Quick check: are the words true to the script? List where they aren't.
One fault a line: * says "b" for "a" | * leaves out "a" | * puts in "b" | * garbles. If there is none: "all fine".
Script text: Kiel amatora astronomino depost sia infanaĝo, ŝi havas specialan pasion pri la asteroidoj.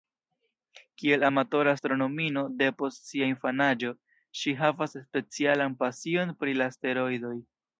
all fine